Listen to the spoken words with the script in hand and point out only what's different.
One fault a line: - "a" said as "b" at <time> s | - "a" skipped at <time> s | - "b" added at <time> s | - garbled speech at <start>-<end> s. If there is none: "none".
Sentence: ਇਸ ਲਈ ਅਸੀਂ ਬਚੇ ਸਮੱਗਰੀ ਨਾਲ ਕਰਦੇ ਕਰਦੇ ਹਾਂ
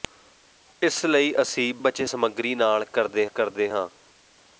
none